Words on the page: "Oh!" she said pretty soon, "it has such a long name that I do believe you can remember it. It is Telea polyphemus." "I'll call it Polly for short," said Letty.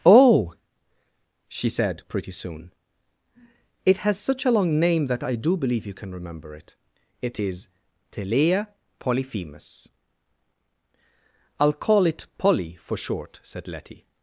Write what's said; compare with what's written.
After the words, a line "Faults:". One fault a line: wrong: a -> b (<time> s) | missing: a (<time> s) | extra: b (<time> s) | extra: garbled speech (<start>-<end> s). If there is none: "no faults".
"Oh!" she said pretty soon, "it has such a long name that I do believe you can remember it. It is Telea polyphemus." "I'll call it Polly for short," said Letty.
Faults:
no faults